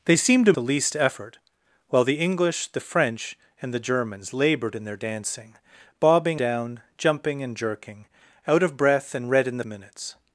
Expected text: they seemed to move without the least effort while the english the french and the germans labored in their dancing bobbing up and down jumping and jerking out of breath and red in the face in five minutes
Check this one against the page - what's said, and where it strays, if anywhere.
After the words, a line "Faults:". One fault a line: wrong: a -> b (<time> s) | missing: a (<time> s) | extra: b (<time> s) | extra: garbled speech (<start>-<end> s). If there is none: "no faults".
they seemed to the least effort while the english the french and the germans labored in their dancing bobbing down jumping and jerking out of breath and red in the minutes
Faults:
missing: move without (0.5 s)
missing: up and (6.4 s)
missing: face in five (9.6 s)